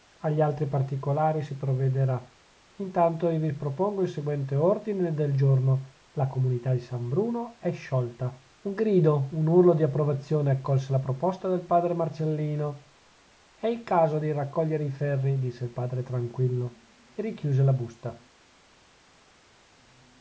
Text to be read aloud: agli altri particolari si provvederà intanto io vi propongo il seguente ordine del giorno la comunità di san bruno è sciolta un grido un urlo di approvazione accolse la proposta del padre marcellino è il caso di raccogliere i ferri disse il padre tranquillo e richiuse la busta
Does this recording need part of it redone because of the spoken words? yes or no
no